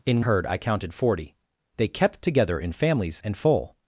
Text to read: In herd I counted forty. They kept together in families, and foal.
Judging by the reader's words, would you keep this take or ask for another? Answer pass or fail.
pass